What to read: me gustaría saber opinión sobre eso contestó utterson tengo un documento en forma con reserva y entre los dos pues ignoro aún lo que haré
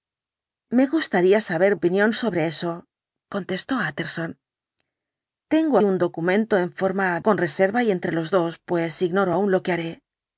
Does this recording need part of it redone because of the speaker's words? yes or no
no